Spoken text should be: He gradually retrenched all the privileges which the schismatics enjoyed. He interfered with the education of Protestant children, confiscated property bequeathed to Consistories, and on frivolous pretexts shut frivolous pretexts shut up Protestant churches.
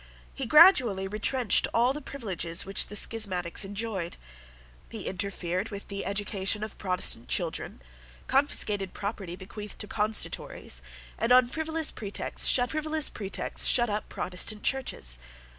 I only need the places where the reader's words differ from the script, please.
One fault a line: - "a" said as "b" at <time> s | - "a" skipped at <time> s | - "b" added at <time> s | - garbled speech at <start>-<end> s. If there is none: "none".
none